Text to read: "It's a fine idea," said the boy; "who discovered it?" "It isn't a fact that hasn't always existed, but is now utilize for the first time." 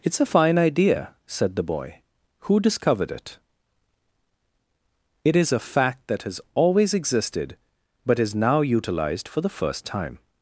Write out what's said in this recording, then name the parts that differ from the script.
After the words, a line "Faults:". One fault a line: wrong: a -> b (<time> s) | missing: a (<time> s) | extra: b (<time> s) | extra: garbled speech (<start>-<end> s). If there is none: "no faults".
"It's a fine idea," said the boy; "who discovered it?" "It is a fact that has always existed, but is now utilized for the first time."
Faults:
wrong: isn't -> is (5.4 s)
wrong: hasn't -> has (6.2 s)
wrong: utilize -> utilized (8.6 s)